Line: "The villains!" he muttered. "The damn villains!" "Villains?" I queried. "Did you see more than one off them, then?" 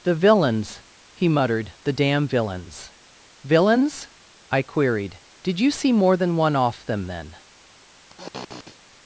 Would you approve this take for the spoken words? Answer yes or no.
yes